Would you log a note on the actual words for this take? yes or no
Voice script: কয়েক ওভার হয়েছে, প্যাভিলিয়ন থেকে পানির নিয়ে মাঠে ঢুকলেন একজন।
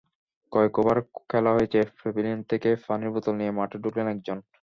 yes